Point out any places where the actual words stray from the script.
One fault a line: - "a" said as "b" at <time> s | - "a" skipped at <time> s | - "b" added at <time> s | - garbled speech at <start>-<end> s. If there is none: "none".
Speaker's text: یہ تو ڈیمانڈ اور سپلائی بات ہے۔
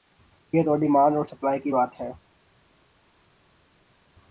- "کی" added at 1.6 s